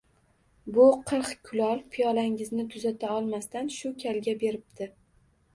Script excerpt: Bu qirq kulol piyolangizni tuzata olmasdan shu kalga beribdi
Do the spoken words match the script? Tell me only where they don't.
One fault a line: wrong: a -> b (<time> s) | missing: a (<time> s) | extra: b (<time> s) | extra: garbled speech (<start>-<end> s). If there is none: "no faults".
no faults